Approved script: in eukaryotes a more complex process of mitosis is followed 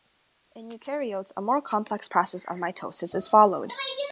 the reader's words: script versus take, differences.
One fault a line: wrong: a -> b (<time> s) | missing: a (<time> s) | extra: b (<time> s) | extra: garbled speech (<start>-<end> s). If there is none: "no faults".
no faults